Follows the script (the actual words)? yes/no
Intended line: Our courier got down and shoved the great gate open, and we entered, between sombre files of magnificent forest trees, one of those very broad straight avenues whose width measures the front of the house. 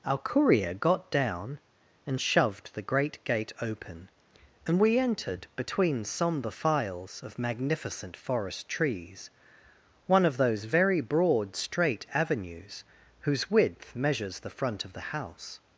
yes